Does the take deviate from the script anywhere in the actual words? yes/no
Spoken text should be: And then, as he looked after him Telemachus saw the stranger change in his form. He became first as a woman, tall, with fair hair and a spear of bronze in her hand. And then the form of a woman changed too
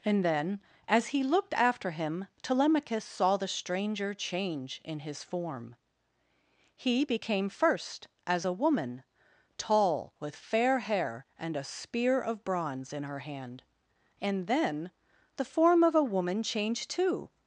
no